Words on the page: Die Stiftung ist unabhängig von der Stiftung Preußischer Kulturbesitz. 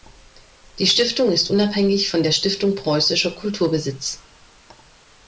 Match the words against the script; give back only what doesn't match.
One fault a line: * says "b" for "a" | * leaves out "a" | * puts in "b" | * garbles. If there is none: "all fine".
all fine